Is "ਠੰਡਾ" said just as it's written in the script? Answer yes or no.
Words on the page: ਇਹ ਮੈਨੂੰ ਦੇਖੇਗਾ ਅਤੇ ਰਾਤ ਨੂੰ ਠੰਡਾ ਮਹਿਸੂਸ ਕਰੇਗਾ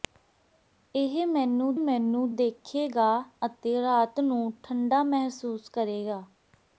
yes